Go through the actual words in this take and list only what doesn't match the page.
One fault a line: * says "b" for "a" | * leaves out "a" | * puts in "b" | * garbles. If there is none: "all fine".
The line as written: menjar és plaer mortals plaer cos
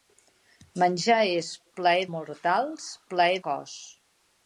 all fine